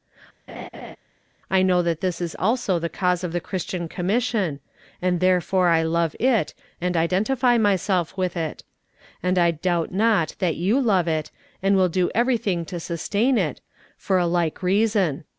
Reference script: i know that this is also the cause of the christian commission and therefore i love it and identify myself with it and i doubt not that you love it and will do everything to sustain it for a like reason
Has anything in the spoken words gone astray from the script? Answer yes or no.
no